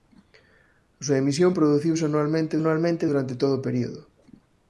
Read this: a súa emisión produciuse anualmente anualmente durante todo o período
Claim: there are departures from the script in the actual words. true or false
false